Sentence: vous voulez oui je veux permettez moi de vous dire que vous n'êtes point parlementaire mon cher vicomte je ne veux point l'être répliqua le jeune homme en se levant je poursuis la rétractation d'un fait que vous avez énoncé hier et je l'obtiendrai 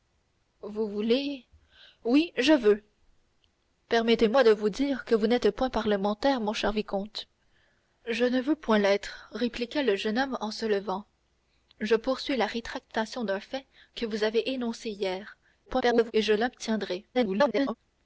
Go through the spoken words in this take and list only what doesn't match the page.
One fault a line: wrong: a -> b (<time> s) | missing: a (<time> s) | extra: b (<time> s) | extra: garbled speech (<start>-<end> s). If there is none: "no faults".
extra: garbled speech (15.7-16.1 s)
extra: garbled speech (17.1-17.8 s)